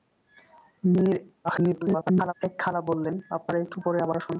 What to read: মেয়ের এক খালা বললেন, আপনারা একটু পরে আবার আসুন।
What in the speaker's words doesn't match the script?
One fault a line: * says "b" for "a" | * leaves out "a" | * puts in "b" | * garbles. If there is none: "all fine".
* garbles